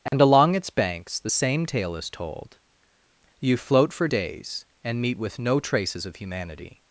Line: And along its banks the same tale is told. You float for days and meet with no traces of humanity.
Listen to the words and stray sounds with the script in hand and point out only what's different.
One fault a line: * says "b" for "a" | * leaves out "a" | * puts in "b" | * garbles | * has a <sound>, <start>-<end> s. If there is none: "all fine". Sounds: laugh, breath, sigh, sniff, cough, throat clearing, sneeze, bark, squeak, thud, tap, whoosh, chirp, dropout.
* has a dropout, 0.1-0.1 s